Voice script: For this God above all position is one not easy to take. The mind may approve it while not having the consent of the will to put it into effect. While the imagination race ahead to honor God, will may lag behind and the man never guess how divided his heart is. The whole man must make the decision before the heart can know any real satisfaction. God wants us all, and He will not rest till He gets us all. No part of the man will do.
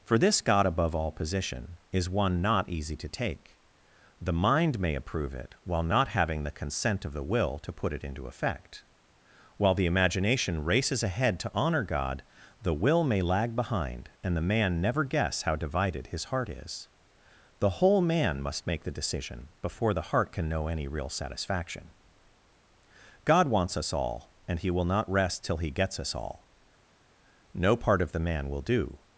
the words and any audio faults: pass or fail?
fail